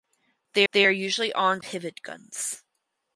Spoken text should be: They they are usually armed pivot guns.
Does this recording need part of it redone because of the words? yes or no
no